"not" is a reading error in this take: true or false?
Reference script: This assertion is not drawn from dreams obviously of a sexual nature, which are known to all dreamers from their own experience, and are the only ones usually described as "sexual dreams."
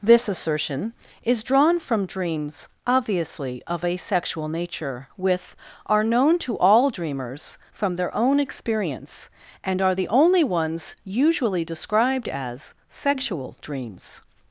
true